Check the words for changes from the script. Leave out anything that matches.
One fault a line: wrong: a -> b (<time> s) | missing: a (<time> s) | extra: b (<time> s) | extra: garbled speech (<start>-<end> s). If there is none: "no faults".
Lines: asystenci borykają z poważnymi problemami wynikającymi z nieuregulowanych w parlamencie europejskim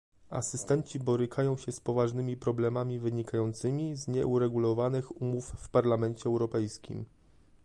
extra: się (1.6 s)
extra: umów (5.2 s)